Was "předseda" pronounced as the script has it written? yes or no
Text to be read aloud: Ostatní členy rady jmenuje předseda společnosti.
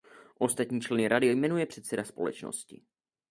yes